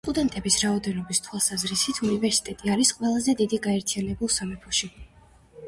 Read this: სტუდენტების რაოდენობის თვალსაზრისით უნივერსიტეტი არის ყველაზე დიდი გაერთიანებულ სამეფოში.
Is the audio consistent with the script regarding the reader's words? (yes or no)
yes